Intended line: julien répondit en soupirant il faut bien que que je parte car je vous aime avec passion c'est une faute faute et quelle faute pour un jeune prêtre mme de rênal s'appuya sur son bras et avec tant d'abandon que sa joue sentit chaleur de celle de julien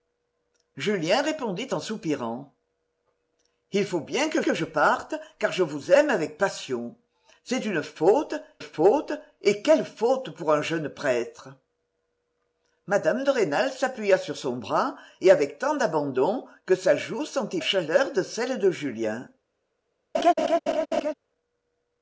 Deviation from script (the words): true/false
false